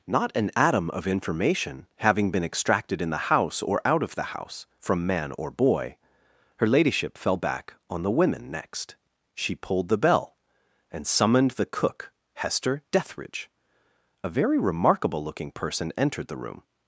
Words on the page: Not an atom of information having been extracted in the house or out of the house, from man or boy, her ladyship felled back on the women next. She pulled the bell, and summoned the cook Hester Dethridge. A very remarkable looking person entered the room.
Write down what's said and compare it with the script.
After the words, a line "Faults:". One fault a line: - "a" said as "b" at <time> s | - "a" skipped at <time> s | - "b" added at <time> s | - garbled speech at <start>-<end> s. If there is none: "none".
Not an atom of information having been extracted in the house or out of the house, from man or boy, her ladyship fell back on the women next. She pulled the bell, and summoned the cook Hester Dethridge. A very remarkable looking person entered the room.
Faults:
- "felled" said as "fell" at 7.2 s